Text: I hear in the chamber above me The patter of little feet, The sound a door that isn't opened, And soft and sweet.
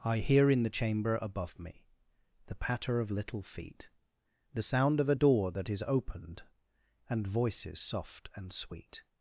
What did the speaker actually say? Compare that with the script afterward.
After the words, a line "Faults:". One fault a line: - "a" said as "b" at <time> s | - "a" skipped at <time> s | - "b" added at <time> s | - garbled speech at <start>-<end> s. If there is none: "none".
I hear in the chamber above me The patter of little feet, The sound of a door that is opened, And voices soft and sweet.
Faults:
- "of" added at 5.0 s
- "isn't" said as "is" at 5.7 s
- "voices" added at 7.3 s